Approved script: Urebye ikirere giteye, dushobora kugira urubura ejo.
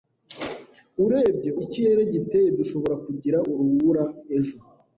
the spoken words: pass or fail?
pass